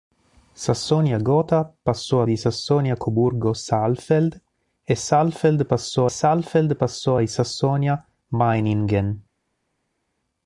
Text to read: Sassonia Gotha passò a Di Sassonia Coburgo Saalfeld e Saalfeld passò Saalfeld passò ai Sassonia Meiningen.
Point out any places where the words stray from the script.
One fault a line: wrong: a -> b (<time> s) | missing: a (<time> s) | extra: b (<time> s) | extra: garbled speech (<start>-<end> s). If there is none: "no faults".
no faults